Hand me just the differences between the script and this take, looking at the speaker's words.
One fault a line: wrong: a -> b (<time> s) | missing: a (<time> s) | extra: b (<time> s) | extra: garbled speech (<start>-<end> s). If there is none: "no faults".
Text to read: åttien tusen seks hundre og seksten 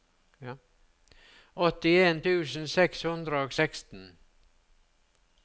no faults